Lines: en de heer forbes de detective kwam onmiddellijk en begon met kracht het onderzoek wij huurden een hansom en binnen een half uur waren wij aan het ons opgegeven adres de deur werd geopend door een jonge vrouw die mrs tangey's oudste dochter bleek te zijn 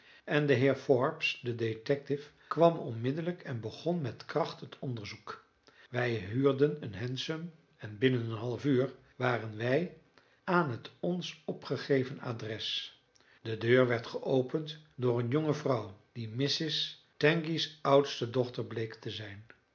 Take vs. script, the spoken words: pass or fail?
pass